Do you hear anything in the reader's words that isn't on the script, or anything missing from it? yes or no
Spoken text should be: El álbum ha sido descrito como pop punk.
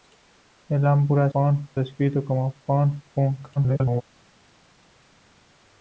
yes